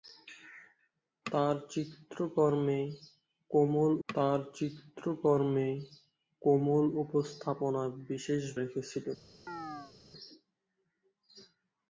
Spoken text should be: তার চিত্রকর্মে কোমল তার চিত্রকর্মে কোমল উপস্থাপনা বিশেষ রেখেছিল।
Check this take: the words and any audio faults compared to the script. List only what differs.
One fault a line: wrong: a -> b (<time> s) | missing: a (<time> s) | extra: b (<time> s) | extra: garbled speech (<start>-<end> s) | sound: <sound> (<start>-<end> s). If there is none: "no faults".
sound: chirp (9.5-9.9 s)